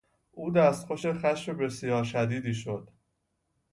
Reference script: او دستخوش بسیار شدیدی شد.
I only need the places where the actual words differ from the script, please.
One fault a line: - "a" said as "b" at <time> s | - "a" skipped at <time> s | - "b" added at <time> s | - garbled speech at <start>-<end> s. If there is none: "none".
- "خشم" added at 1.1 s